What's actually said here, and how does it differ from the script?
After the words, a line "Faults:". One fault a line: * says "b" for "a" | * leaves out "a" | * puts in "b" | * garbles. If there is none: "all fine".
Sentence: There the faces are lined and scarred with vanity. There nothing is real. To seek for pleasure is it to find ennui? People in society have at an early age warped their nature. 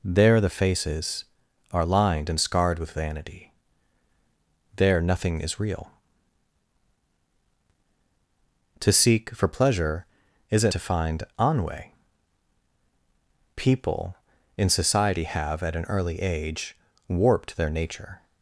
There the faces are lined and scarred with vanity. There nothing is real. To seek for pleasure is it to find ennui? People in society have at an early age warped their nature.
Faults:
all fine